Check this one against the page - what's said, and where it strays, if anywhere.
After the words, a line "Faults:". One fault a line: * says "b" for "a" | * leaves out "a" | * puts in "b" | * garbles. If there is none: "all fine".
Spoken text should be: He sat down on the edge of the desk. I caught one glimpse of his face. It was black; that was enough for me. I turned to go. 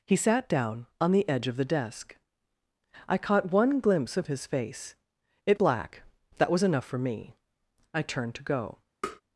He sat down on the edge of the desk. I caught one glimpse of his face. It black; that was enough for me. I turned to go.
Faults:
* leaves out "was"